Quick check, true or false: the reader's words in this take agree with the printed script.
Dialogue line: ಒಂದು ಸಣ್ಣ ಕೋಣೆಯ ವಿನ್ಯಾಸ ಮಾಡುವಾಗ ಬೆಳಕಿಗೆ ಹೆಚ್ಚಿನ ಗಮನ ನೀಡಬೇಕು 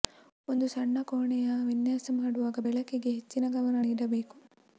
true